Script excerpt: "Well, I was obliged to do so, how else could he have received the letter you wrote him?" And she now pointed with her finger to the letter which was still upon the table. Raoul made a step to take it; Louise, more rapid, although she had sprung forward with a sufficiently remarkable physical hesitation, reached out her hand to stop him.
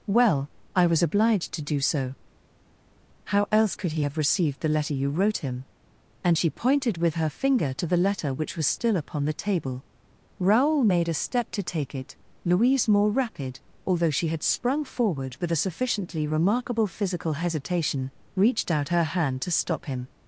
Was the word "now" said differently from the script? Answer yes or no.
yes